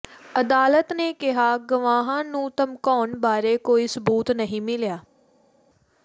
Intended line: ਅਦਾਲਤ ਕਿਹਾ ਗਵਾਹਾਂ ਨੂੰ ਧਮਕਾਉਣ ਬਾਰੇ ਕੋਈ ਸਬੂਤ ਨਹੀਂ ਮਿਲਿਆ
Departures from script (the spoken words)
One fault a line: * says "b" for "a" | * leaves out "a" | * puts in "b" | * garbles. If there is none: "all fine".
* puts in "ਨੇ"